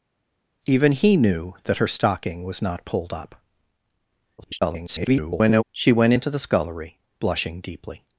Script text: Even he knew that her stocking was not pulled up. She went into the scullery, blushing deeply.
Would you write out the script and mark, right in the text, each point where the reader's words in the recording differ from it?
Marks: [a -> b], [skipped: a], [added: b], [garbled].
Even he knew that her stocking was not pulled up. [garbled] She went into the scullery, blushing deeply.